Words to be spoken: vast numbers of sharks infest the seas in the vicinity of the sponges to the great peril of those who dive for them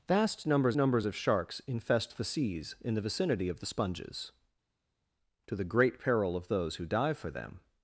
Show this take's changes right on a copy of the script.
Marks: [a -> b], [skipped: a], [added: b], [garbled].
vast numbers [added: numbers] of sharks infest the seas in the vicinity of the sponges to the great peril of those who dive for them